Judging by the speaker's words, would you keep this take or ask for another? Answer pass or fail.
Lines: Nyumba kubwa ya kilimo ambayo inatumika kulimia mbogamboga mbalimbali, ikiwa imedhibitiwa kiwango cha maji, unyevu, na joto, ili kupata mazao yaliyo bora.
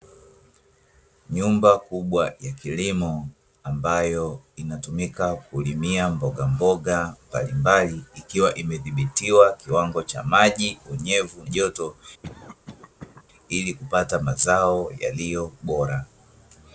fail